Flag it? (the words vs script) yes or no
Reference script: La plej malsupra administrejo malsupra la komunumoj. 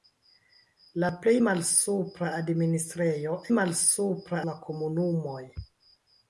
no